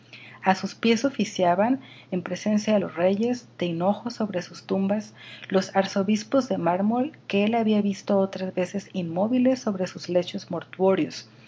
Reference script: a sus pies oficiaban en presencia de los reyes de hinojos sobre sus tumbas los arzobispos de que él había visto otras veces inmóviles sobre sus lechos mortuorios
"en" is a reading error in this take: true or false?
false